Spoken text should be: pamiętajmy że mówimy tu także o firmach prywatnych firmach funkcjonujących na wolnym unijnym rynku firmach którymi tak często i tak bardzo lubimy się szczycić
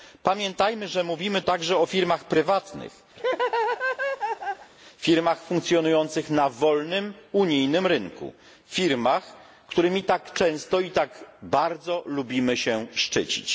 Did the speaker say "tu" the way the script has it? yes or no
no